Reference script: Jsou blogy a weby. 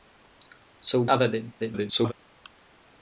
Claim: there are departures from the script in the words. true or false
true